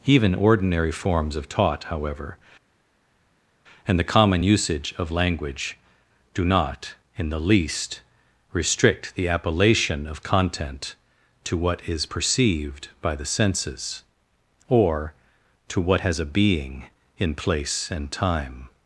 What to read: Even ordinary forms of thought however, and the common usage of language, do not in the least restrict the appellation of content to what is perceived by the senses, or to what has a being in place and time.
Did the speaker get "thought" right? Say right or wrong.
wrong